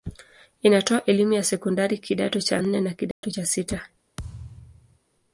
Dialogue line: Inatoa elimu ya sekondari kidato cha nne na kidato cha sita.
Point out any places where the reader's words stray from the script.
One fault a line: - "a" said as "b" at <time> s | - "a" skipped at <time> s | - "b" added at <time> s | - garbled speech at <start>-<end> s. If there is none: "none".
none